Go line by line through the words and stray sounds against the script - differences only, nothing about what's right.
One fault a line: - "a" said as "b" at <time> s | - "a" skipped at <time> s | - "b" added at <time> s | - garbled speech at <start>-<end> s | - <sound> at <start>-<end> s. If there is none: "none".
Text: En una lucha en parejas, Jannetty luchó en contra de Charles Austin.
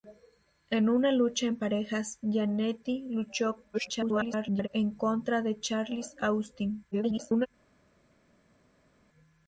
- garbled speech at 3.7-4.7 s
- garbled speech at 6.9-7.5 s